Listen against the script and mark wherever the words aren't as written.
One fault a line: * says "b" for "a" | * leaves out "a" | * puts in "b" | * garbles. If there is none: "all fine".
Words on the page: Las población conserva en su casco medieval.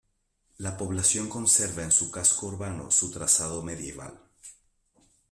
* says "La" for "Las"
* puts in "urbano su trazado"